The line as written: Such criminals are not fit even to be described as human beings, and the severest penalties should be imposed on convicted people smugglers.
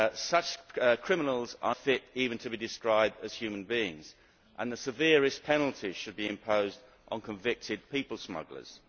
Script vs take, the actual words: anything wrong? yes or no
yes